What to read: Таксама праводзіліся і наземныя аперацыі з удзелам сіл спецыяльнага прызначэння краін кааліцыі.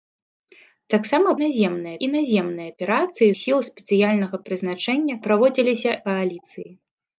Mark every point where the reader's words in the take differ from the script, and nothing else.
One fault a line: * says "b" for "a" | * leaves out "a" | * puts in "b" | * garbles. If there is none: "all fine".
* says "наземныя" for "праводзіліся"
* leaves out "з удзелам"
* says "праводзіліся" for "краін"